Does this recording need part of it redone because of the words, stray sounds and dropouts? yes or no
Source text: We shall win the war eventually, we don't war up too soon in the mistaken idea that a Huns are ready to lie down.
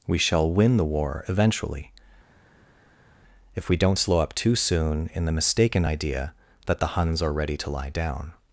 yes